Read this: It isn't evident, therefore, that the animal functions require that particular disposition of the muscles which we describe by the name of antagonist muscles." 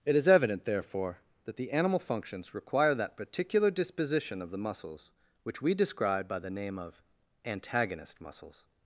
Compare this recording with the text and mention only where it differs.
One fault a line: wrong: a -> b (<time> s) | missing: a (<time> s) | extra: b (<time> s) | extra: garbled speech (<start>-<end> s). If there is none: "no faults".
wrong: isn't -> is (0.1 s)